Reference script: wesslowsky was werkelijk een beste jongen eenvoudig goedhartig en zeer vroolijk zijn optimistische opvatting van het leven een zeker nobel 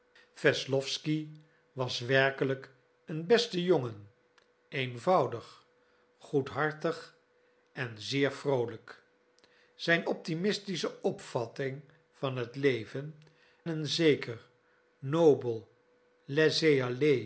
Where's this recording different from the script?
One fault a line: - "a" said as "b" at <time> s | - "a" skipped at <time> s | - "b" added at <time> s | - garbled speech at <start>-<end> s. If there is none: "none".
none